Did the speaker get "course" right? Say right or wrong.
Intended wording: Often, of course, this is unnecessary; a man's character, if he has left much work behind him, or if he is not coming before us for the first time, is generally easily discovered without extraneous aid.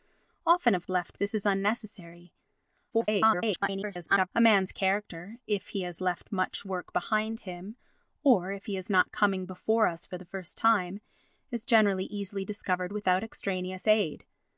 wrong